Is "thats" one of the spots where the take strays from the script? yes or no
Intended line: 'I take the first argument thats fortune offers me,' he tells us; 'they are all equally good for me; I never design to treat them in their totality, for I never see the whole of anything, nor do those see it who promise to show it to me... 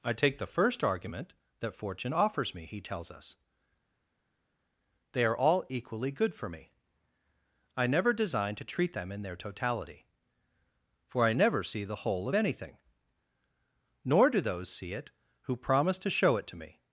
yes